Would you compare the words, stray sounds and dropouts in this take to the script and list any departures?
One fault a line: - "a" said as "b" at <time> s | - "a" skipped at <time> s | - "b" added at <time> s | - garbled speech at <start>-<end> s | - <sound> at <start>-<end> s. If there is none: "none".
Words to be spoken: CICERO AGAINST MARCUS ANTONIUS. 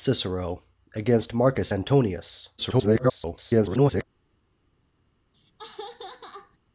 - garbled speech at 2.6-4.0 s
- laugh at 5.3-6.6 s